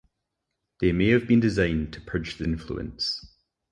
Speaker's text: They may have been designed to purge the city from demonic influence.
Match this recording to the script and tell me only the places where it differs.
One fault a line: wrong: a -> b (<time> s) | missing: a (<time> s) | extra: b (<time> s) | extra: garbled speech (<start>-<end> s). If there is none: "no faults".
missing: city from demonic (2.5 s)